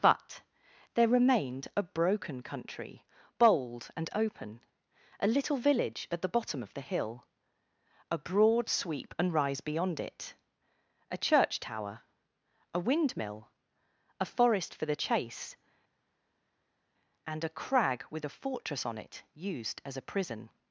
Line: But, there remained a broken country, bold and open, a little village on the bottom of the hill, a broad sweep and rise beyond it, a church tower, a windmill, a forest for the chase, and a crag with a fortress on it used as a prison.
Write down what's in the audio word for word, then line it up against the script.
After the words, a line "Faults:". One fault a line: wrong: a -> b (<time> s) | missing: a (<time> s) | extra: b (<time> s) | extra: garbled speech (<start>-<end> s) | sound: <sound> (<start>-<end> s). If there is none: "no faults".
But, there remained a broken country, bold and open, a little village at the bottom of the hill, a broad sweep and rise beyond it, a church tower, a windmill, a forest for the chase, and a crag with a fortress on it used as a prison.
Faults:
wrong: on -> at (6.1 s)